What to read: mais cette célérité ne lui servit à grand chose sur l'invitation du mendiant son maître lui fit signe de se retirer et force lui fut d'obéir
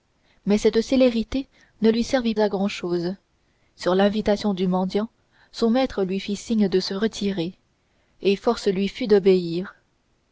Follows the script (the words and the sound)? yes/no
yes